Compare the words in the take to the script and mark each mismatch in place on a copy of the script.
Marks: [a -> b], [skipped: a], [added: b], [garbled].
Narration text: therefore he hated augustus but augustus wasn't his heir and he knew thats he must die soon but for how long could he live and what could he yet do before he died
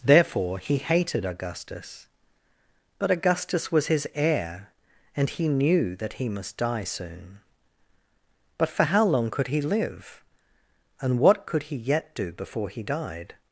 therefore he hated augustus but augustus [wasn't -> was] his heir and he knew [thats -> that] he must die soon but for how long could he live and what could he yet do before he died